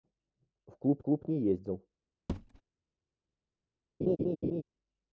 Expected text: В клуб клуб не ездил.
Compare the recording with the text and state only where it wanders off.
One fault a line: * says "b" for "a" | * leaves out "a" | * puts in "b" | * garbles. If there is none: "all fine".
all fine